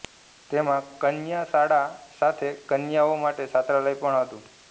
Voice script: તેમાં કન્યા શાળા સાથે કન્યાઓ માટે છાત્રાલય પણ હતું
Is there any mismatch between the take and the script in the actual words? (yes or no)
no